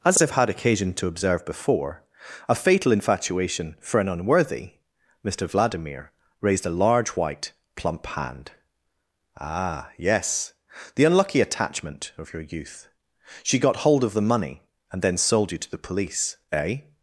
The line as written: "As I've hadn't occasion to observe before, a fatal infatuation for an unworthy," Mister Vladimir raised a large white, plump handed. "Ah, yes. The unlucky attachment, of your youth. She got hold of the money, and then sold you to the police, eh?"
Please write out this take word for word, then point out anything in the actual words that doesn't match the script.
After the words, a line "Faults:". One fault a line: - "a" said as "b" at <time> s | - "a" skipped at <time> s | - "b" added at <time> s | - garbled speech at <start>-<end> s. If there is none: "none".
"As I've had occasion to observe before, a fatal infatuation for an unworthy," Mister Vladimir raised a large white, plump hand. "Ah, yes. The unlucky attachment, of your youth. She got hold of the money, and then sold you to the police, eh?"
Faults:
- "hadn't" said as "had" at 0.3 s
- "handed" said as "hand" at 8.0 s